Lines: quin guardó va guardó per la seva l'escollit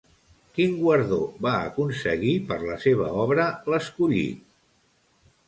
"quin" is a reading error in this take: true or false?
false